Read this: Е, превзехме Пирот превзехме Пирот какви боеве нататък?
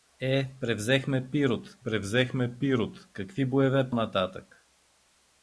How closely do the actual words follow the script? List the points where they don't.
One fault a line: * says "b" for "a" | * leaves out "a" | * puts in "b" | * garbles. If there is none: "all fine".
all fine